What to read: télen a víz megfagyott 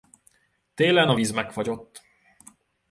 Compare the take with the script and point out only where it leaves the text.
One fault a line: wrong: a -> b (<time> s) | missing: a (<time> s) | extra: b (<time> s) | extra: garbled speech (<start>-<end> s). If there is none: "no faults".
no faults